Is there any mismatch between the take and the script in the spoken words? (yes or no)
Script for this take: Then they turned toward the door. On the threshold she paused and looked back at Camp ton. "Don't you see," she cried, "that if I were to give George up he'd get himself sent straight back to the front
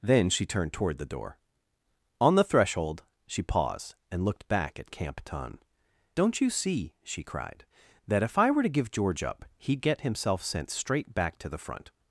yes